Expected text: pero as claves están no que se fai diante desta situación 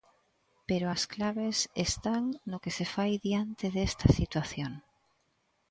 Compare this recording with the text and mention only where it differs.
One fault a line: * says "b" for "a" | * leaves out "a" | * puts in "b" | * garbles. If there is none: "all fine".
all fine